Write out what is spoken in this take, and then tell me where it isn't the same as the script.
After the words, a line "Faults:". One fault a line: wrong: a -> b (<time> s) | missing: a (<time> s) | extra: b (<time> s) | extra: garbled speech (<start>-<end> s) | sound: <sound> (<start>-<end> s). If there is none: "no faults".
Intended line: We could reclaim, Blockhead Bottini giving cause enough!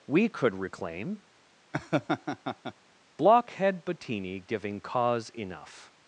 We could reclaim, Blockhead Bottini giving cause enough!
Faults:
sound: laugh (1.7-2.7 s)